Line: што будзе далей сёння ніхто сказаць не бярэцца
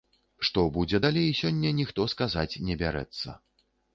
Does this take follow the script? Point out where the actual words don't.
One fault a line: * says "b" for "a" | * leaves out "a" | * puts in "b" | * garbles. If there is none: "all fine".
all fine